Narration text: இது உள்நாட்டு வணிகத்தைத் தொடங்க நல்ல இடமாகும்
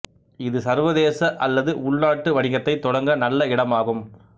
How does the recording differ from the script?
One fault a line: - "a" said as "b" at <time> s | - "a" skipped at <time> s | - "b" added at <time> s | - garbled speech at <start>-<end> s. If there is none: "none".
- "சர்வதேச அல்லது" added at 0.6 s